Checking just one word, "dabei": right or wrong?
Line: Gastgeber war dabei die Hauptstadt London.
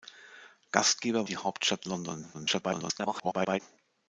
wrong